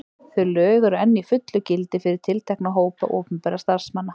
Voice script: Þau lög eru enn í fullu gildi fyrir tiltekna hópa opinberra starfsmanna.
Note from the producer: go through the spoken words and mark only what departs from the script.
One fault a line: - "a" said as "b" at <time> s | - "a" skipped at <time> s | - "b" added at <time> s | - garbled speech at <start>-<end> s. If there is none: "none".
none